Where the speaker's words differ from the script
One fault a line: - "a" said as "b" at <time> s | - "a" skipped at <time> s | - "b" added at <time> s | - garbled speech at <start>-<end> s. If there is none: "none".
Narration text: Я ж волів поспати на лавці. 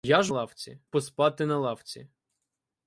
- "волів" said as "лавці" at 0.3 s